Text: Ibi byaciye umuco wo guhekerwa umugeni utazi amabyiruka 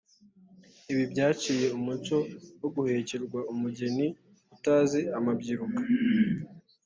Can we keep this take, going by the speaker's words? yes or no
yes